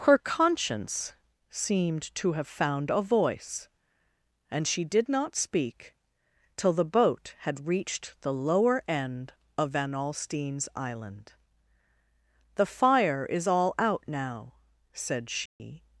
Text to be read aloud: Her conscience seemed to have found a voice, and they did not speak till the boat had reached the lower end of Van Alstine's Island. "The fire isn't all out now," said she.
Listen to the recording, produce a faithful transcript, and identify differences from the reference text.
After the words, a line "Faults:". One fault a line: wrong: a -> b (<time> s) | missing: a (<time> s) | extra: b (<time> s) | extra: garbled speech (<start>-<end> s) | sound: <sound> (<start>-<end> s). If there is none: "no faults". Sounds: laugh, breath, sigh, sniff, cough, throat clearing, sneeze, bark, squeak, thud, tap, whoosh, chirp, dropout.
Her conscience seemed to have found a voice, and she did not speak till the boat had reached the lower end of Van Alstine's Island. "The fire is all out now," said she.
Faults:
wrong: they -> she (4.7 s)
wrong: isn't -> is (13.3 s)
sound: dropout (15.5-15.6 s)